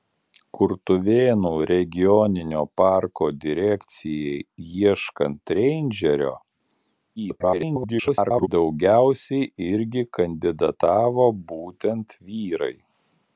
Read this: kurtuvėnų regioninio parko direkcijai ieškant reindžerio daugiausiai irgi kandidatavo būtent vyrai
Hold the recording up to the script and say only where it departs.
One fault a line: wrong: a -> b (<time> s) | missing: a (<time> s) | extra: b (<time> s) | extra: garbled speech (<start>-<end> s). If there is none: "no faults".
extra: garbled speech (7.2-8.5 s)